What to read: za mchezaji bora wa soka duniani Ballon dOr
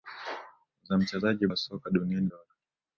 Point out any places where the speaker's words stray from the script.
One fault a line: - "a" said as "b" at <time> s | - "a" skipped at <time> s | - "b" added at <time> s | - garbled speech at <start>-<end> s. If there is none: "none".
- "bora" skipped at 1.5 s
- "Ballon" skipped at 2.3 s